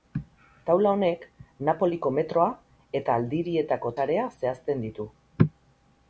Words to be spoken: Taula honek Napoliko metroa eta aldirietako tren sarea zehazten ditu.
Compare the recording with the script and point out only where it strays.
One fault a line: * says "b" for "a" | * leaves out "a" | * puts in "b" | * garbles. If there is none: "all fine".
* leaves out "tren"